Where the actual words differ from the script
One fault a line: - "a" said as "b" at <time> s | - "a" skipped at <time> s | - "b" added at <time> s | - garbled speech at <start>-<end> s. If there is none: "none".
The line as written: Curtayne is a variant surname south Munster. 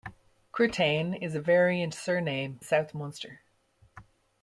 none